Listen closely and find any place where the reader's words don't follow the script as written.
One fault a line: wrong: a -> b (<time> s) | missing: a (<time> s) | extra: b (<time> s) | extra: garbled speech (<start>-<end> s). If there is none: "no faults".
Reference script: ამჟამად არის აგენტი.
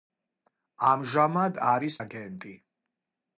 no faults